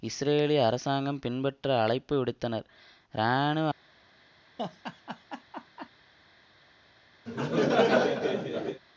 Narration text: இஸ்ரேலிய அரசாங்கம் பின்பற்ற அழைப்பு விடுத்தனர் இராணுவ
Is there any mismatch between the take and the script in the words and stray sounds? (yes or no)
yes